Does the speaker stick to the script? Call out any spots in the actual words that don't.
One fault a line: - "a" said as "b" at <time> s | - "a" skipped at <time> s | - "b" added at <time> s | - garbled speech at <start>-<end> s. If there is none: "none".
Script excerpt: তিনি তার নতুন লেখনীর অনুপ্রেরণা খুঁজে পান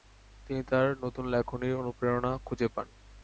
none